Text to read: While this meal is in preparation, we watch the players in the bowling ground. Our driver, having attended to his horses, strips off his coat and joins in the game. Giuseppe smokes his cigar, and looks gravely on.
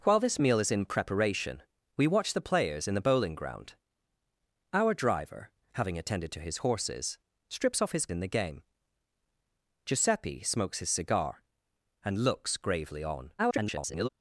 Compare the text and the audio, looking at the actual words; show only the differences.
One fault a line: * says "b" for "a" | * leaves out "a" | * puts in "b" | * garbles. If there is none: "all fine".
* leaves out "coat and joins"
* garbles